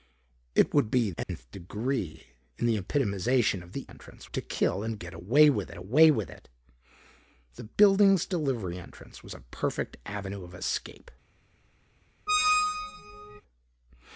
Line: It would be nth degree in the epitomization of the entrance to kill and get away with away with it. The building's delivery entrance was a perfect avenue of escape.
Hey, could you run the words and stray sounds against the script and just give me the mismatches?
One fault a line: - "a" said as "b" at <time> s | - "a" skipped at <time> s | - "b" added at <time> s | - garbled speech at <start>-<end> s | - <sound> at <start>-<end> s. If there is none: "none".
- dropout at 1.2-1.3 s
- squeak at 12.3-13.4 s